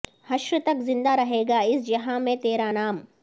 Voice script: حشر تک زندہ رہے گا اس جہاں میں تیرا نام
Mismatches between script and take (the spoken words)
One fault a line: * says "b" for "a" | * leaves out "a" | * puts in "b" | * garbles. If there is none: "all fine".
all fine